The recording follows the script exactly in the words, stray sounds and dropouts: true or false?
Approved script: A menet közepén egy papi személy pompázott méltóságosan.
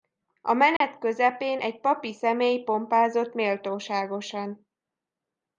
false